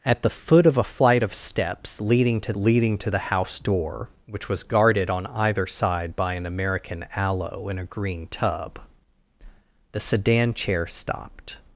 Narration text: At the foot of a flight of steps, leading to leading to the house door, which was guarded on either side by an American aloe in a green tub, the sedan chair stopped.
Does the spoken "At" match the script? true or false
true